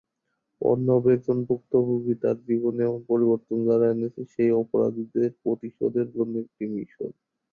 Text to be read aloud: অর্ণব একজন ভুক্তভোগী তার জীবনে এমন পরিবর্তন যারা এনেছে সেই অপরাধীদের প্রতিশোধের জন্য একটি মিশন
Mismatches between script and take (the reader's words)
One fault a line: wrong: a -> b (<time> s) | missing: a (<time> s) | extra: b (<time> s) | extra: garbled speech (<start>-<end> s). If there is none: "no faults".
no faults